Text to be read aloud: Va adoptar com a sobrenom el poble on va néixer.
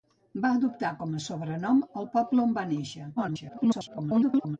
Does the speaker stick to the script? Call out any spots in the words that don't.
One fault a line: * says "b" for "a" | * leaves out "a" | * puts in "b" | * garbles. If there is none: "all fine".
* garbles